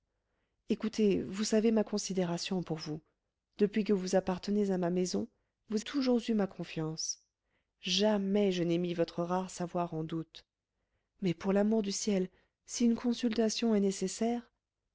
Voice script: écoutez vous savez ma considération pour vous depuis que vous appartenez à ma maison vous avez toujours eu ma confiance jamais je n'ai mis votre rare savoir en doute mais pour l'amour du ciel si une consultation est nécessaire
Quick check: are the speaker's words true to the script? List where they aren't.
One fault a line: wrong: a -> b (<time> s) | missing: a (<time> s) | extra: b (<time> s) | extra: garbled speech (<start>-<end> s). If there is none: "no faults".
missing: avez (5.8 s)